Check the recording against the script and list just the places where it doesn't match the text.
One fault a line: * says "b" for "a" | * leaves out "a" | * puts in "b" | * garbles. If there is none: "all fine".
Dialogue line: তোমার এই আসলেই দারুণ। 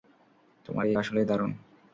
all fine